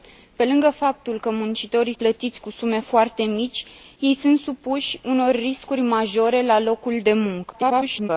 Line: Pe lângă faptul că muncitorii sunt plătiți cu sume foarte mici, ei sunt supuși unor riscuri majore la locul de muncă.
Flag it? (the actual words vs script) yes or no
yes